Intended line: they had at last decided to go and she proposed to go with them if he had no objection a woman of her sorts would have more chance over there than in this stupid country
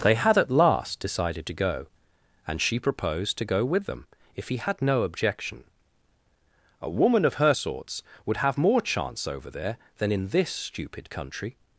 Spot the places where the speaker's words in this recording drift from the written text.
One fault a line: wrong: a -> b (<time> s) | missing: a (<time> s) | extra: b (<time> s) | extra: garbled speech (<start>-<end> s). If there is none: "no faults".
no faults